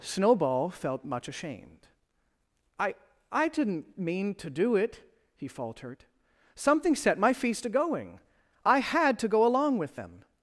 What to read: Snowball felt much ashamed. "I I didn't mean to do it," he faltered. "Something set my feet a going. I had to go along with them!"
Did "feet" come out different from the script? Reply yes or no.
yes